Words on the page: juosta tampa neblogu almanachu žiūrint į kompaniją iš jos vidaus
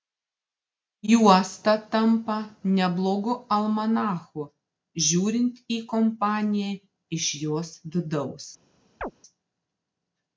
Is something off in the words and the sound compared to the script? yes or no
yes